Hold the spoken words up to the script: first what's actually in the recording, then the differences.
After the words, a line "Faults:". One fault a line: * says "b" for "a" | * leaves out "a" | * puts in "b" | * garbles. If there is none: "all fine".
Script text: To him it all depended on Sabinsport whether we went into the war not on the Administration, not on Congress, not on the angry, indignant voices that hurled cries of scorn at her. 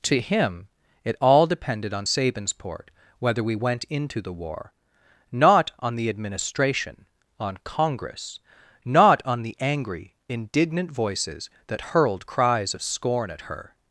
To him it all depended on Sabinsport whether we went into the war not on the Administration, on Congress, not on the angry, indignant voices that hurled cries of scorn at her.
Faults:
* leaves out "not"